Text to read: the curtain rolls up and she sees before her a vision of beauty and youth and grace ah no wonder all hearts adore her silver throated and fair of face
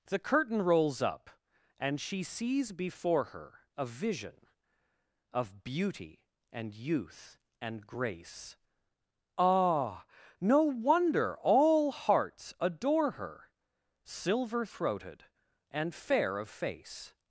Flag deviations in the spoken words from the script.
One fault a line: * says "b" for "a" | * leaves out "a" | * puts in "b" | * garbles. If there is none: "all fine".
all fine